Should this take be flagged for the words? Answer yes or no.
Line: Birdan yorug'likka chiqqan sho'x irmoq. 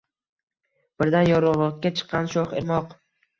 no